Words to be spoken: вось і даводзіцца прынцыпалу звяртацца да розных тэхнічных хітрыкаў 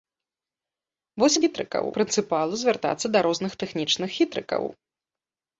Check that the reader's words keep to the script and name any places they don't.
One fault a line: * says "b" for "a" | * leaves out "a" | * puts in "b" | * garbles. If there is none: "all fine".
* says "хітрыкаў" for "даводзіцца"